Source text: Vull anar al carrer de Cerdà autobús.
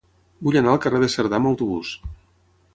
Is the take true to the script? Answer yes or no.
no